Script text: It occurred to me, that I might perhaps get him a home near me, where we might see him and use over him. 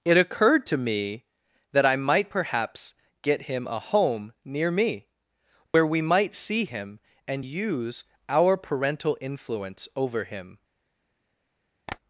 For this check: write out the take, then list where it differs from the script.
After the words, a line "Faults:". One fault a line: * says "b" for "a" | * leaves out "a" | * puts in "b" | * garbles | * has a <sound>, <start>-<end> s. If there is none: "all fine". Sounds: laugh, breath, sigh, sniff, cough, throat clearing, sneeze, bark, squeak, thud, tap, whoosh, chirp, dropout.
It occurred to me, that I might perhaps get him a home near me, where we might see him and use our parental influence over him.
Faults:
* has a dropout, 5.7-5.7 s
* puts in "our parental influence"
* has a tap, 11.9-12.0 s